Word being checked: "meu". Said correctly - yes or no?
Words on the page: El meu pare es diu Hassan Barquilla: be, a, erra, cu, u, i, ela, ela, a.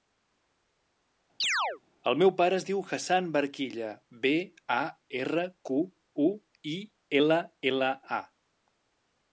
yes